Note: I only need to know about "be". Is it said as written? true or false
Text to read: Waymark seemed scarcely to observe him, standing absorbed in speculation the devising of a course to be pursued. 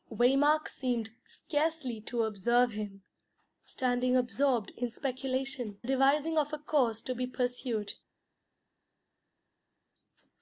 true